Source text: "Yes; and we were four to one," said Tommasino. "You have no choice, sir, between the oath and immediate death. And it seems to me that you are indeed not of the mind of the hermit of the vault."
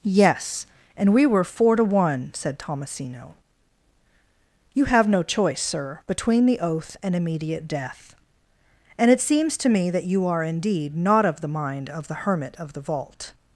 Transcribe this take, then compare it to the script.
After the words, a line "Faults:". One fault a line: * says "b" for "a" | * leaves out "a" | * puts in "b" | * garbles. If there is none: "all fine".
"Yes; and we were four to one," said Tommasino. "You have no choice, sir, between the oath and immediate death. And it seems to me that you are indeed not of the mind of the hermit of the vault."
Faults:
all fine